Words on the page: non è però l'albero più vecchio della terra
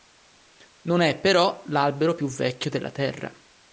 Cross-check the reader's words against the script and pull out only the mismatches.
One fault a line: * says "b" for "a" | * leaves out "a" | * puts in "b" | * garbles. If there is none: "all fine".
all fine